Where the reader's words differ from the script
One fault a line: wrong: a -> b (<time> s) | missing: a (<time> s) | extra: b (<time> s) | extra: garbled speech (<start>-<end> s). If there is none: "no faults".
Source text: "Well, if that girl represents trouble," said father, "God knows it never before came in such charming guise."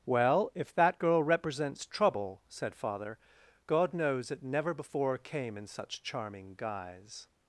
no faults